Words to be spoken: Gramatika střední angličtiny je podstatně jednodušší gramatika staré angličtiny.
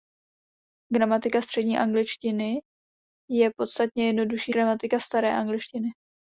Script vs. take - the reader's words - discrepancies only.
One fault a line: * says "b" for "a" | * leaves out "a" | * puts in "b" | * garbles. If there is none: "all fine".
all fine